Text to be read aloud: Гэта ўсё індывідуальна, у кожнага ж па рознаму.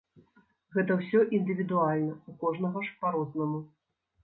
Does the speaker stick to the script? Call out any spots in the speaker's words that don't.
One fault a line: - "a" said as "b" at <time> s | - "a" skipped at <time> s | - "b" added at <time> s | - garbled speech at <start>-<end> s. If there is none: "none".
none